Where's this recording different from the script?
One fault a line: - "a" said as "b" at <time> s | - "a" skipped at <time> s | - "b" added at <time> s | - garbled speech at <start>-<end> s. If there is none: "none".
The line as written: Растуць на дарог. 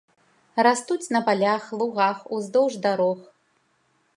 - "палях лугах уздоўж" added at 1.3 s